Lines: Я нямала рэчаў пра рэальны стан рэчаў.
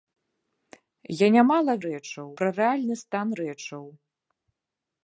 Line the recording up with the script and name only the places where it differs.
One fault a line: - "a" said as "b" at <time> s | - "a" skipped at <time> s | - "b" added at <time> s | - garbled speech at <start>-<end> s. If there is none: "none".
none